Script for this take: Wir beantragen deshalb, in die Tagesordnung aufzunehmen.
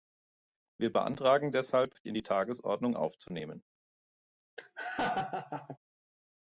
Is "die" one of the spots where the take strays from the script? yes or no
no